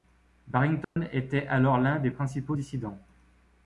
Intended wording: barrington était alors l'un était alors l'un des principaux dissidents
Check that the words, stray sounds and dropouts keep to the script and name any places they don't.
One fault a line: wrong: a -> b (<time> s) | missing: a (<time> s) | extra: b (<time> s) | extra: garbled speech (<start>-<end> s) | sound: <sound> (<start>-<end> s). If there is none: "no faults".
sound: dropout (0.8-1.0 s)
missing: était alors l'un (2.0 s)